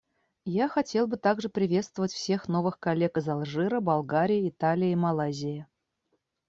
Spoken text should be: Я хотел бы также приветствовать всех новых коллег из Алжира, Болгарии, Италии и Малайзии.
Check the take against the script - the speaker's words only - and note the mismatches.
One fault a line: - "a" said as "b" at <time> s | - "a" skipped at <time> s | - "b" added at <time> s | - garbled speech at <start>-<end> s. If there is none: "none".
none